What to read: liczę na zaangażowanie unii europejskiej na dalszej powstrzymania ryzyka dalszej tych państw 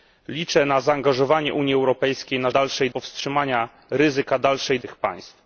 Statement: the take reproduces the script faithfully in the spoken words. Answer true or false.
true